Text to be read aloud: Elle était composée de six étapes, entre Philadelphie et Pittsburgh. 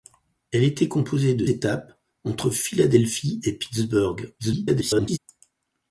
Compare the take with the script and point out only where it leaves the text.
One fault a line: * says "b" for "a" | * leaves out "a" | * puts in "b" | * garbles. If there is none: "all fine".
* leaves out "six"
* garbles